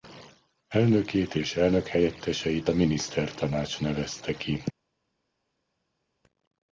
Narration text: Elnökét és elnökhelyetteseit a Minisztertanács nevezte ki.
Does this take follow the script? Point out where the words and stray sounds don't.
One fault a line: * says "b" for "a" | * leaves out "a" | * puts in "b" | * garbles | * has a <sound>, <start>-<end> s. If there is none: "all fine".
all fine